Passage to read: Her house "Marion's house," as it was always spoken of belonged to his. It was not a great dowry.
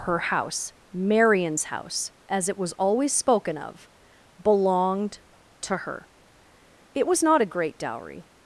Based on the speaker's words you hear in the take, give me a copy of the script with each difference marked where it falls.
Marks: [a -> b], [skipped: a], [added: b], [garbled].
Her house "Marion's house," as it was always spoken of belonged to [his. -> her] It was not a great dowry.